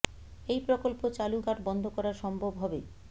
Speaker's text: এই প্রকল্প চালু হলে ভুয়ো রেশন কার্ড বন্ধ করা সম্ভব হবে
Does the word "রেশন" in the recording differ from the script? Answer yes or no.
yes